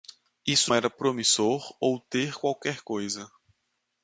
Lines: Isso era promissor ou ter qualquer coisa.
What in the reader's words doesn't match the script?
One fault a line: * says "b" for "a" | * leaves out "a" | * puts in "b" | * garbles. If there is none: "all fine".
all fine